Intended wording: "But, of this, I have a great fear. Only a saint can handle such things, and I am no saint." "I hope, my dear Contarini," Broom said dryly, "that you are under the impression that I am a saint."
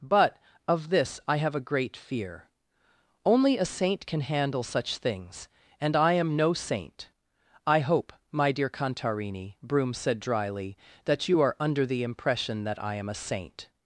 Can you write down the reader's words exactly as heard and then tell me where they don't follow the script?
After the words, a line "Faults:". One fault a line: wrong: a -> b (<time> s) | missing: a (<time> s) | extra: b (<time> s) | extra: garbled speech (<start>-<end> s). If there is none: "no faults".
"But, of this, I have a great fear. Only a saint can handle such things, and I am no saint." "I hope, my dear Contarini," Broom said dryly, "that you are under the impression that I am a saint."
Faults:
no faults